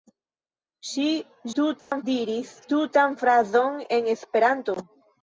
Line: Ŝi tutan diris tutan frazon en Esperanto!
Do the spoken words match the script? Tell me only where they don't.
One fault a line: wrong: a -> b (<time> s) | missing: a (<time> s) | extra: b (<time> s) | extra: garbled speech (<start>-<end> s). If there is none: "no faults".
no faults